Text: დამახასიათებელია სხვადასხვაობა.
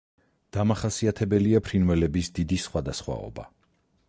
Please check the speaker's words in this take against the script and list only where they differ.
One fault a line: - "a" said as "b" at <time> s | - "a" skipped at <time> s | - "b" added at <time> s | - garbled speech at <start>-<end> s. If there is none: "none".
- "ფრინველების დიდი" added at 1.7 s